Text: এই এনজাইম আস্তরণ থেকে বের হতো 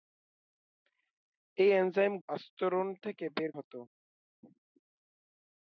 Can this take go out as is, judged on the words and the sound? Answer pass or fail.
pass